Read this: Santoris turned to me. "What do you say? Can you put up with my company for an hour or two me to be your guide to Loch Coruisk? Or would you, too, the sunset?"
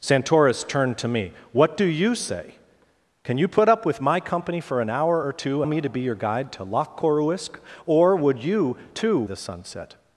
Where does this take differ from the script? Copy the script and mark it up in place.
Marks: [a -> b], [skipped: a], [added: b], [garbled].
Santoris turned to me. "What do you say? Can you put up with my company for an hour or two me to be your guide to Loch Coruisk? Or would you, too, the sunset?"